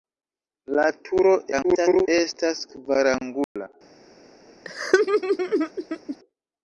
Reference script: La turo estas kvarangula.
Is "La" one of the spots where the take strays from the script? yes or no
no